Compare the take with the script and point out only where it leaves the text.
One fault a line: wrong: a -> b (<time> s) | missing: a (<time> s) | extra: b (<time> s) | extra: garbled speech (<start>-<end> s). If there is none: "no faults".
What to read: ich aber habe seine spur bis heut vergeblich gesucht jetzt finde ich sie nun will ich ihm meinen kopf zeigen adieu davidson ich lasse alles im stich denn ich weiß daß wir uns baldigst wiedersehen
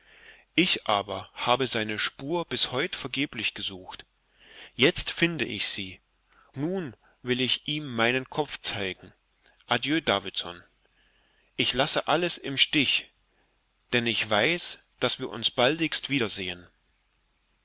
no faults